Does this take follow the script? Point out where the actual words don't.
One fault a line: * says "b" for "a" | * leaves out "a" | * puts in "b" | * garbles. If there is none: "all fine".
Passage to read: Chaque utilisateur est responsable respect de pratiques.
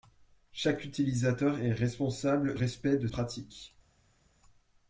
all fine